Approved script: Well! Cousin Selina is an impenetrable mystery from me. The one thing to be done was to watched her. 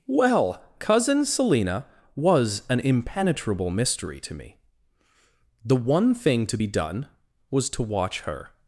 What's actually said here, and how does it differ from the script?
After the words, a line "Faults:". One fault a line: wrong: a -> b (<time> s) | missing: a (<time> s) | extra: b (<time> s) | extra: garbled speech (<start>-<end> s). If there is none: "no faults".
Well! Cousin Selina was an impenetrable mystery to me. The one thing to be done was to watch her.
Faults:
wrong: is -> was (2.1 s)
wrong: from -> to (4.2 s)
wrong: watched -> watch (7.8 s)